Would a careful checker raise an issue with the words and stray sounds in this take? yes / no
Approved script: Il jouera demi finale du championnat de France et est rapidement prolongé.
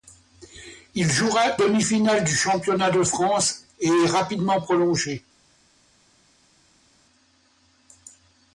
no